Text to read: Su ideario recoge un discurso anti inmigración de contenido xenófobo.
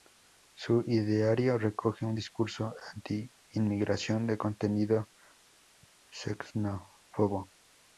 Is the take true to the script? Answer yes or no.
yes